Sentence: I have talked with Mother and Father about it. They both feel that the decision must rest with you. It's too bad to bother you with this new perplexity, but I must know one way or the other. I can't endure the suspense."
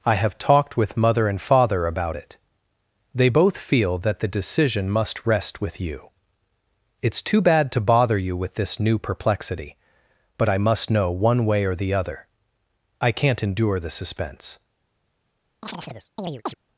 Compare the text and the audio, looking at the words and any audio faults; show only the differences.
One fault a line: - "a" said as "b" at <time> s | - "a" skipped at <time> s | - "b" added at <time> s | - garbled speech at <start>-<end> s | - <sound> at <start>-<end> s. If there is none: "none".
- chirp at 15.6-16.5 s